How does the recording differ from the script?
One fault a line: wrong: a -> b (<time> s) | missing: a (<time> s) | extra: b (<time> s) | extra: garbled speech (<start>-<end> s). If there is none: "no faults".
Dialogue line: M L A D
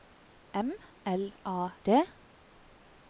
no faults